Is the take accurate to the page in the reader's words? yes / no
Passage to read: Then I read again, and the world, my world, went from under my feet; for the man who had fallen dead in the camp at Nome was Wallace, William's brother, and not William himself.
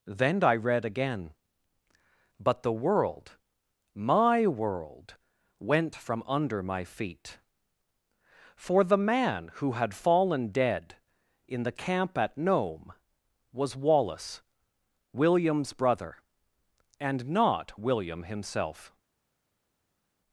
no